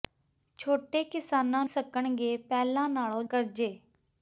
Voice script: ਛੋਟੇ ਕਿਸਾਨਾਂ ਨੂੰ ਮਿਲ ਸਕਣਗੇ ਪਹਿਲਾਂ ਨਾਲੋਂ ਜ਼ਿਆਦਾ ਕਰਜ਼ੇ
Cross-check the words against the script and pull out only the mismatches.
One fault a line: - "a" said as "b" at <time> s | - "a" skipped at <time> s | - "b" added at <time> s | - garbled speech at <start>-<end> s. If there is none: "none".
- "ਨੂੰ ਮਿਲ" skipped at 1.6 s
- "ਜ਼ਿਆਦਾ" skipped at 3.2 s